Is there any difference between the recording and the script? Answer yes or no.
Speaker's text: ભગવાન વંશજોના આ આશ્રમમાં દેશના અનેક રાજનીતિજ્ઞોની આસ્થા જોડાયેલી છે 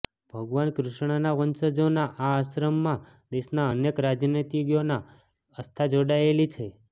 yes